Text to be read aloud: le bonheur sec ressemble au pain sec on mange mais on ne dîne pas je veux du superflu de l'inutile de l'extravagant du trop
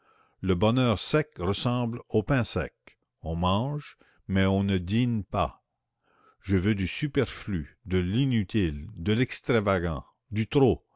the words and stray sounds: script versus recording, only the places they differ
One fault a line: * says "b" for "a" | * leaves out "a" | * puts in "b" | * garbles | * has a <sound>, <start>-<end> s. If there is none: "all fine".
all fine